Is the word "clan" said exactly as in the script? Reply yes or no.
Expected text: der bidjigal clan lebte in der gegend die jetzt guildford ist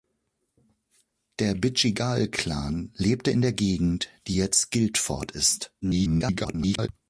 yes